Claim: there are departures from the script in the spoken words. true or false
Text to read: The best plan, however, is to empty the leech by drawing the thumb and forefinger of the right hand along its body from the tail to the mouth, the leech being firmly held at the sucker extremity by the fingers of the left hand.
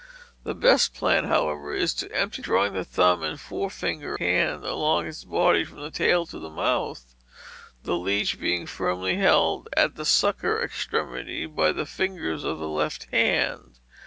true